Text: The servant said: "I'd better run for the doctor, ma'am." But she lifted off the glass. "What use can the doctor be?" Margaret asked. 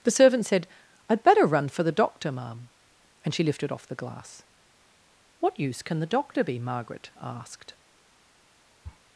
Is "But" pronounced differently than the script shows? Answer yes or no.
yes